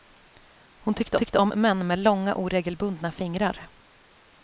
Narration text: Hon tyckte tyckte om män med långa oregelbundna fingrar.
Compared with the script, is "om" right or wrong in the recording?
right